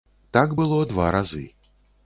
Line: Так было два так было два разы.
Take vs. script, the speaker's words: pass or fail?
fail